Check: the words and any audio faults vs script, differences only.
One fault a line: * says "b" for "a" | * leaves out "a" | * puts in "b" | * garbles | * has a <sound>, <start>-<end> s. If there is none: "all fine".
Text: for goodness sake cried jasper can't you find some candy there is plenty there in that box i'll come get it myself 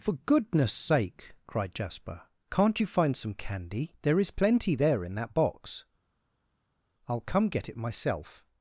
all fine